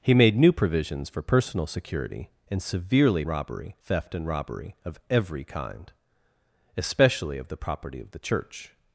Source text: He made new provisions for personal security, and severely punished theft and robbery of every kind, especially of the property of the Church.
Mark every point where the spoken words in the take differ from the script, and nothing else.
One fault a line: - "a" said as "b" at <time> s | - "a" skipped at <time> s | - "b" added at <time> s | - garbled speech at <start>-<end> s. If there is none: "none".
- "punished" said as "robbery" at 3.3 s